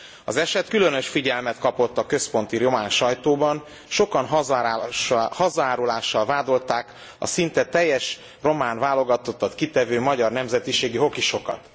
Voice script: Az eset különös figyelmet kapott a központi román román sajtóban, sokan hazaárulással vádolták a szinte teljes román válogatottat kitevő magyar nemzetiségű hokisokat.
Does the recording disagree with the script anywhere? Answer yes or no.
yes